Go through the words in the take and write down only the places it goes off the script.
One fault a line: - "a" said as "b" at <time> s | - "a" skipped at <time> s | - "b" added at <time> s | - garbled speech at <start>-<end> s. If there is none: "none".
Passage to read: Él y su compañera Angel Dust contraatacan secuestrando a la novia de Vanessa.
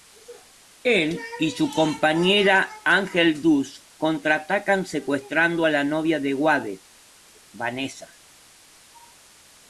- "Wade" added at 6.4 s